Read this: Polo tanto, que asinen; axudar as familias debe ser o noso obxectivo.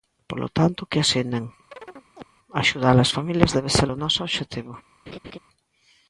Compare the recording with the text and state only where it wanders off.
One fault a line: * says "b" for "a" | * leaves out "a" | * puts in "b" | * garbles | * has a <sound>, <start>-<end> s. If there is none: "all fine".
* has a chirp, 1.7-2.2 s
* has a laugh, 5.1-5.4 s